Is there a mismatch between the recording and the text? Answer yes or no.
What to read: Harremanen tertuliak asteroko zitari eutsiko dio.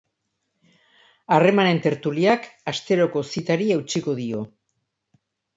no